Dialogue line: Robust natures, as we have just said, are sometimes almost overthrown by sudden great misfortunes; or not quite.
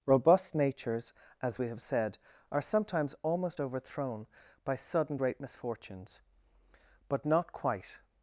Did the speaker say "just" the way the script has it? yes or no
no